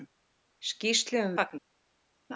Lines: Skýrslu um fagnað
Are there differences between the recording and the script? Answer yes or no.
no